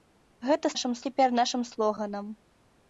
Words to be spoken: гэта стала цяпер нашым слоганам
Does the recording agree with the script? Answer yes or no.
no